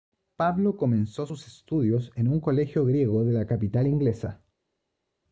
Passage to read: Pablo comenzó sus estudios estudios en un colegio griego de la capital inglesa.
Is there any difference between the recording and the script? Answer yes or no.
yes